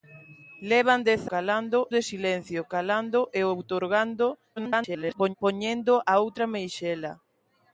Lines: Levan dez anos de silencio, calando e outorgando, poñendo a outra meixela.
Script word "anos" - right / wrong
wrong